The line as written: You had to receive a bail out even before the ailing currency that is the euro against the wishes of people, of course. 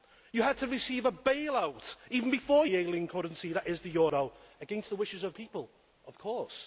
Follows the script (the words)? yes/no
yes